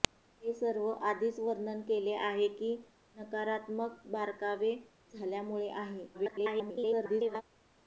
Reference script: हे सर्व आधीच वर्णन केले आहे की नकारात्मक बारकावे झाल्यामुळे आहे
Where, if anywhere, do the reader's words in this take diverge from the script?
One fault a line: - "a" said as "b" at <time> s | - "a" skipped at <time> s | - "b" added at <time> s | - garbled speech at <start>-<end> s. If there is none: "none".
- garbled speech at 6.1-7.4 s